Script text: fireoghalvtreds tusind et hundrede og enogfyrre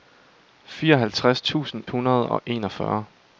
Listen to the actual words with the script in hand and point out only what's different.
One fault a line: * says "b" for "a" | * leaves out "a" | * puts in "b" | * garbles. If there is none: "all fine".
* leaves out "et"